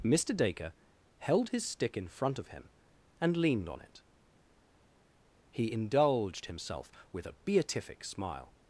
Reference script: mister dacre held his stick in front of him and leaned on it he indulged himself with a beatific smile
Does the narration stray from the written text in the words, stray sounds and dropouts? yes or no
no